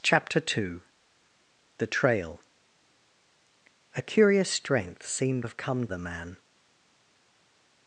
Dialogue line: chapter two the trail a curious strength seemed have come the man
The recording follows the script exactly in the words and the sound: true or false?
true